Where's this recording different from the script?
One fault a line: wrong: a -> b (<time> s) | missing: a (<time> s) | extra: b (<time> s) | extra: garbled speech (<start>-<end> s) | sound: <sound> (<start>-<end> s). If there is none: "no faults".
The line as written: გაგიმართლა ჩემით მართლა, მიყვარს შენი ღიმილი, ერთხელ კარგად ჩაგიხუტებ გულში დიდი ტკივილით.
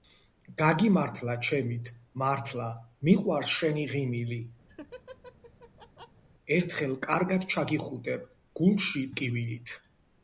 sound: laugh (4.7-6.2 s)
missing: დიდი (9.0 s)